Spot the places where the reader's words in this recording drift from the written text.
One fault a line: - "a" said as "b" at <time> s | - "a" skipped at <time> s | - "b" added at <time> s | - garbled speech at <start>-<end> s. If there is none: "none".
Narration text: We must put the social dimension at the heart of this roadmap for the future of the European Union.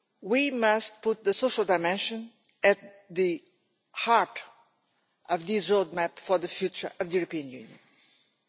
none